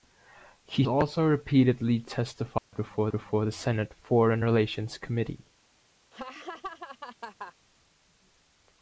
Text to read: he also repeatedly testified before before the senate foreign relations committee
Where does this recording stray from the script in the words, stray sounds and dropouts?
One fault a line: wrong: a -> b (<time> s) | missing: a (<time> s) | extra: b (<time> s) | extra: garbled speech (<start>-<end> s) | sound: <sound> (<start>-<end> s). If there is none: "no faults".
sound: dropout (2.6-2.7 s)
sound: laugh (6.1-7.5 s)